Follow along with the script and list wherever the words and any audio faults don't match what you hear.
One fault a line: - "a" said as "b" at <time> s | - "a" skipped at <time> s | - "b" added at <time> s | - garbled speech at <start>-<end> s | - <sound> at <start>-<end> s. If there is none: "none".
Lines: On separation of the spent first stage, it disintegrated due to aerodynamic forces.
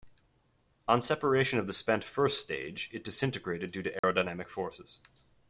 - dropout at 4.0-4.0 s